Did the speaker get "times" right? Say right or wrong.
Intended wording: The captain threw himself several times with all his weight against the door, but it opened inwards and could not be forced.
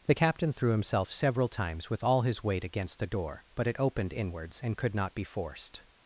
right